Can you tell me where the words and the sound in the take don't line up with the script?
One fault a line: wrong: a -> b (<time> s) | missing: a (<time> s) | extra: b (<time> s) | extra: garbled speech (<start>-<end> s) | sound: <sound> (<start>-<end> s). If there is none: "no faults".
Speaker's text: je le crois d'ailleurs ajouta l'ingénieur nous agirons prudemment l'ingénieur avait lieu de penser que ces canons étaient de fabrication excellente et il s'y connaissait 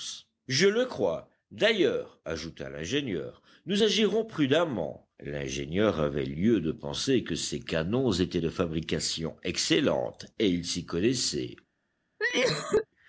sound: cough (12.2-12.9 s)